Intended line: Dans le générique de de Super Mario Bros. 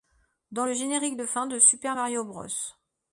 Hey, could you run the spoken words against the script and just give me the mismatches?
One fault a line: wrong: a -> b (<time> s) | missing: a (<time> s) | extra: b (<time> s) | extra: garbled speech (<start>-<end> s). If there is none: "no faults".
extra: fin (1.2 s)